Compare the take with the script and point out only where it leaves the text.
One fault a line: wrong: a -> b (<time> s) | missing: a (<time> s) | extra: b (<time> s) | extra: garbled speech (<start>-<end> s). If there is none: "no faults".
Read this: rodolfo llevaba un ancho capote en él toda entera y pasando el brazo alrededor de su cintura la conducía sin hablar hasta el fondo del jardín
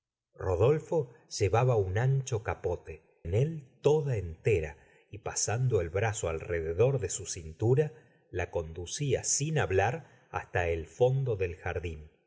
no faults